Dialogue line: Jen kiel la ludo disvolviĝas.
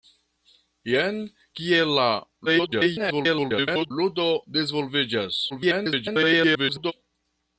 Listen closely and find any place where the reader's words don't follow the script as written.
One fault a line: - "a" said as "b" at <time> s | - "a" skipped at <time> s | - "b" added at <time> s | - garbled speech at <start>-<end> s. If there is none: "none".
- garbled speech at 2.5-3.9 s
- garbled speech at 5.5-6.9 s